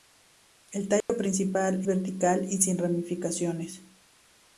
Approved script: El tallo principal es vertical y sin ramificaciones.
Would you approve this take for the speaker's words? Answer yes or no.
no